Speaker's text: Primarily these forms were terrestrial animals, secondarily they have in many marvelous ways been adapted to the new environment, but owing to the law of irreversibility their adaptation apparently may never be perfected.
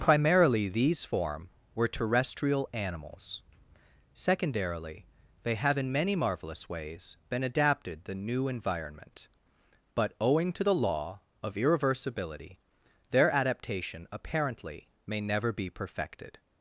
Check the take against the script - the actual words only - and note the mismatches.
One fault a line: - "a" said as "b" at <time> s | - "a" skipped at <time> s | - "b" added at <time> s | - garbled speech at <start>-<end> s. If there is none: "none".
- "forms" said as "form" at 1.1 s
- "to" skipped at 8.1 s